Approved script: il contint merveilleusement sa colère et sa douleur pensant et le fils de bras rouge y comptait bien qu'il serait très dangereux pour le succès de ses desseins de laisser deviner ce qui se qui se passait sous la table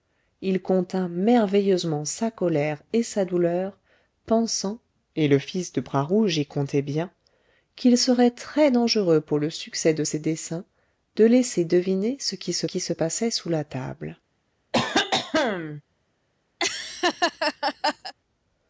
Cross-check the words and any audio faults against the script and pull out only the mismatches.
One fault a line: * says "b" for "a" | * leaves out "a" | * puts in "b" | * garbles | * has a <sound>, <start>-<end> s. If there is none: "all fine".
* has a cough, 14.7-15.8 s
* has a laugh, 16.6-18.1 s